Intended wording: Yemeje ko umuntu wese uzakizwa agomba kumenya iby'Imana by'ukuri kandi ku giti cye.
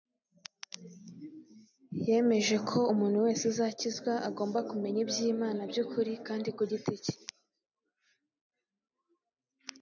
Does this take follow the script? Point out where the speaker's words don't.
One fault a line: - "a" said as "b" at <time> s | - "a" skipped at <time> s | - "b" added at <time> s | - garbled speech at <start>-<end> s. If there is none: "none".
none